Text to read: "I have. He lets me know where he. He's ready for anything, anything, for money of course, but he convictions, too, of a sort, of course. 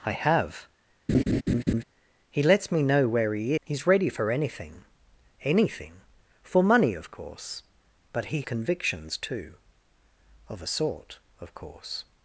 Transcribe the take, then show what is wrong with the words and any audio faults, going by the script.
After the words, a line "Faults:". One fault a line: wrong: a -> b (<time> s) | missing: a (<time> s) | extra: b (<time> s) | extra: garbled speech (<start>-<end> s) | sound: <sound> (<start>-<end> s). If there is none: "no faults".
"I have. He lets me know where he. He's ready for anything, anything, for money of course, but he convictions, too, of a sort, of course.
Faults:
sound: laugh (1.1-1.8 s)